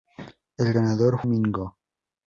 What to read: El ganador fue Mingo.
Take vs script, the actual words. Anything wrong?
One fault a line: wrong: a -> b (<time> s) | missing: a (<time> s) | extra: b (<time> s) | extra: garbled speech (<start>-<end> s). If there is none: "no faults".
missing: fue (1.2 s)